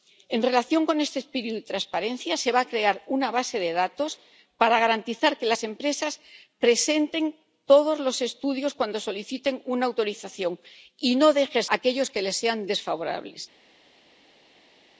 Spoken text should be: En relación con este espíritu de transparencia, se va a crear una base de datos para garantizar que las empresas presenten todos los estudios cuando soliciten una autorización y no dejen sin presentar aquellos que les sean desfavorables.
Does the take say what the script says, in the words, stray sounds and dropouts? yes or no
no